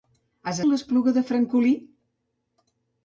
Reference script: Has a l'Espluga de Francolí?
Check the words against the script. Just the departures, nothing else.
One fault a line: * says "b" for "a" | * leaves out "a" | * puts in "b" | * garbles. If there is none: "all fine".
all fine